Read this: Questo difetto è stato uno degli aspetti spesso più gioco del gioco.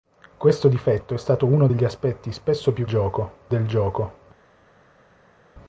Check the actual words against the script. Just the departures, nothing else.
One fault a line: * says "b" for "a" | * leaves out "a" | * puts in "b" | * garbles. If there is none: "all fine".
all fine